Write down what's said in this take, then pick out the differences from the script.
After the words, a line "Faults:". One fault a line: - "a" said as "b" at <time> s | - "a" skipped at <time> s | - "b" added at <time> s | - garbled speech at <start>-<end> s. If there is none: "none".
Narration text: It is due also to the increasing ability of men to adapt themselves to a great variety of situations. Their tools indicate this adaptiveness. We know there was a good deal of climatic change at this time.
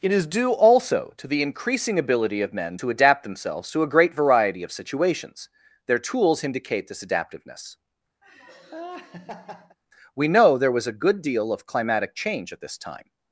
It is due also to the increasing ability of men to adapt themselves to a great variety of situations. Their tools indicate this adaptiveness. We know there was a good deal of climatic change at this time.
Faults:
none